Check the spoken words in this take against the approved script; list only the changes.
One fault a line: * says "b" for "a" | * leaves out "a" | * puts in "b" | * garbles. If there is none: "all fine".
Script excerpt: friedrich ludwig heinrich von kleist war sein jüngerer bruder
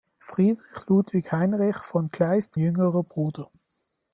* leaves out "war sein"